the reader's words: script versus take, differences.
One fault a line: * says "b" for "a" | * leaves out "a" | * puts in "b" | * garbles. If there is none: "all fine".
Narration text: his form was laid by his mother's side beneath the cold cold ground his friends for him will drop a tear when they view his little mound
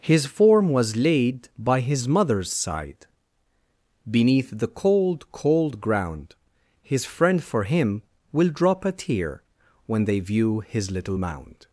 * says "friend" for "friends"